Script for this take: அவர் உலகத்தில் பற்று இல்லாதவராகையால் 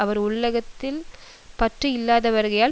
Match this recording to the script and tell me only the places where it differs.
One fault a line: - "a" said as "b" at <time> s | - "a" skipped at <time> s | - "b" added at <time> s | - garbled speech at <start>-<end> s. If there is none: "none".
none